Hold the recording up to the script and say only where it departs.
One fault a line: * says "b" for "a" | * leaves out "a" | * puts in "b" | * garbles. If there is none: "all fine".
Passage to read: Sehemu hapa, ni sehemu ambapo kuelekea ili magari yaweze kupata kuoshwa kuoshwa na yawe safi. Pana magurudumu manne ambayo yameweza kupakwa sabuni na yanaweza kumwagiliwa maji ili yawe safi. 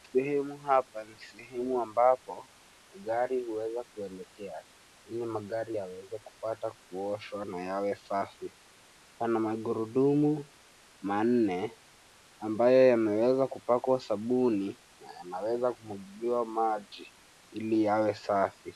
* puts in "gari huweza"
* leaves out "kuoshwa"